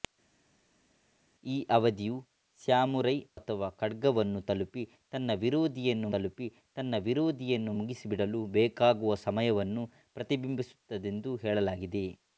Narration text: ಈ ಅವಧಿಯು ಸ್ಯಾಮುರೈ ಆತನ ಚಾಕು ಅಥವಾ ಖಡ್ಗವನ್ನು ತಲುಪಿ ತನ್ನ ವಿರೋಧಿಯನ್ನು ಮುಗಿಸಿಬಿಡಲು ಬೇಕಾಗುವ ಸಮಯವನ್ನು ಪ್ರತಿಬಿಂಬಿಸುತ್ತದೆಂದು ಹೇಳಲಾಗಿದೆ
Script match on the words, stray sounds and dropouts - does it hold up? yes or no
no